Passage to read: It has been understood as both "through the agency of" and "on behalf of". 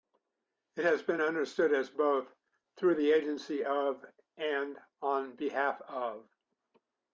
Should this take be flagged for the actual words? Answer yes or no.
no